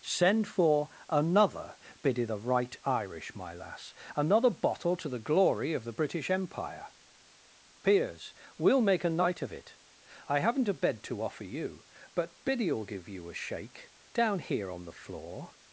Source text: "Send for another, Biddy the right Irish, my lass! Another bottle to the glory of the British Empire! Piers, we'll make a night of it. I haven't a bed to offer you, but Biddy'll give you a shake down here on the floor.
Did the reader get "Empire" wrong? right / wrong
right